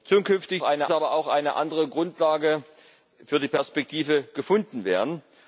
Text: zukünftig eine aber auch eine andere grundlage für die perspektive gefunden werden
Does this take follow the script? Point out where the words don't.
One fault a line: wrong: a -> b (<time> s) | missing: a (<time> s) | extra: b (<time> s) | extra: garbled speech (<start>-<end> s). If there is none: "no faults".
no faults